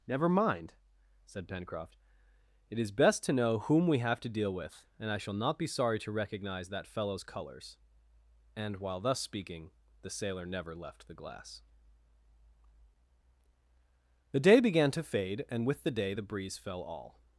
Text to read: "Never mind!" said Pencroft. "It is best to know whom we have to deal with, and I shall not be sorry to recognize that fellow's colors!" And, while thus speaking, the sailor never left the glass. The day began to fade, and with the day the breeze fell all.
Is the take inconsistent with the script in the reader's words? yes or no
no